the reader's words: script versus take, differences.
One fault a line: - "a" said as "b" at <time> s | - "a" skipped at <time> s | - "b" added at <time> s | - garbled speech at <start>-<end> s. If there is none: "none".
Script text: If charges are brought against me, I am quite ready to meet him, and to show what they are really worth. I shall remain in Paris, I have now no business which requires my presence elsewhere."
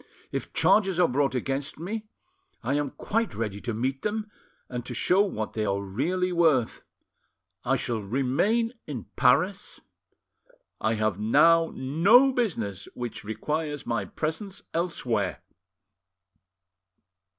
- "him" said as "them" at 4.0 s